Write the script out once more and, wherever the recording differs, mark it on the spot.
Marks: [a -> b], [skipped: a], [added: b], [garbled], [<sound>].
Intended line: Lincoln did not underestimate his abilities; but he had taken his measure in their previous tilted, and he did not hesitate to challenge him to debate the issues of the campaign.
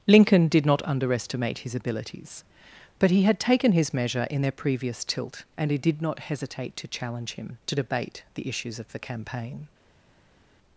Lincoln did not underestimate his abilities; but he had taken his measure in their previous [tilted, -> tilt] and he did not hesitate to challenge him to debate the issues of the campaign.